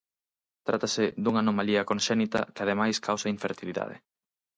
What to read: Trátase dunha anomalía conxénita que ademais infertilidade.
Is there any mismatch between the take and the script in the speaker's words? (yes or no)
yes